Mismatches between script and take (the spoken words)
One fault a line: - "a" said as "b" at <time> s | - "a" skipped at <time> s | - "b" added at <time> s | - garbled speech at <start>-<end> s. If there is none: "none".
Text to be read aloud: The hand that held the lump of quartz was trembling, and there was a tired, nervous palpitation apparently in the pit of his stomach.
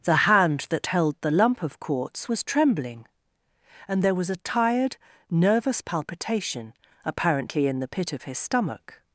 none